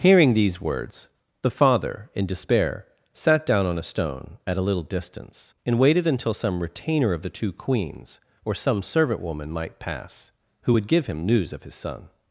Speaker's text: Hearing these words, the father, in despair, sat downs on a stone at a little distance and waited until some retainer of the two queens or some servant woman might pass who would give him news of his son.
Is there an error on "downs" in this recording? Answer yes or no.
yes